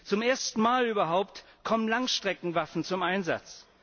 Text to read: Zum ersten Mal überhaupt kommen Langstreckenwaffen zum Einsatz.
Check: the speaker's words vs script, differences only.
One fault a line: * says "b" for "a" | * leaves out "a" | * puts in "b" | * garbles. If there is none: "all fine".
all fine